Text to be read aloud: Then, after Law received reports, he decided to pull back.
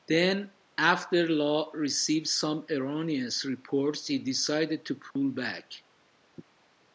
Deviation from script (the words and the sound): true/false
true